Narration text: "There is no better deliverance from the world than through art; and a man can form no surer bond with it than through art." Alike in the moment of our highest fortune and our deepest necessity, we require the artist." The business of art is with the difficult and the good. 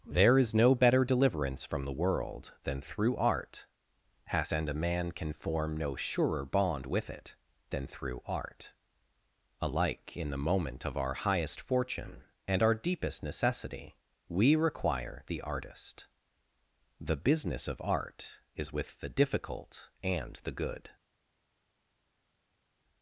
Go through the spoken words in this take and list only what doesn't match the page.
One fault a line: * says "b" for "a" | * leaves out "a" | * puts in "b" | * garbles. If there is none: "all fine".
* puts in "has"